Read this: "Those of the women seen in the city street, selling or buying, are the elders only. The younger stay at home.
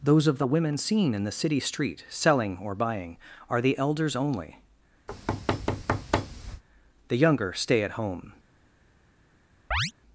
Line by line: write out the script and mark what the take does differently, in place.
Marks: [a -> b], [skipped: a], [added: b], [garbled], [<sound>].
"Those of the women seen in the city street, selling or buying, are the elders only. [thud] The younger stay at home. [chirp]